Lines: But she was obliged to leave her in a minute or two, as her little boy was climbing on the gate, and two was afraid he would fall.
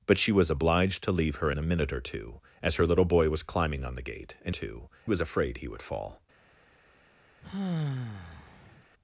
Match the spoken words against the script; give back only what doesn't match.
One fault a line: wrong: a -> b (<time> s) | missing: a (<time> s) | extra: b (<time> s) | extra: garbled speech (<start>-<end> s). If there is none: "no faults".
no faults